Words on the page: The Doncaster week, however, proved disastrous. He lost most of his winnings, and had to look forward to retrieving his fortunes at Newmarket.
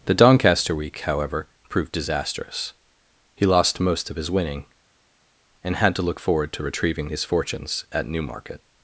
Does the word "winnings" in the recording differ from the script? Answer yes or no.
yes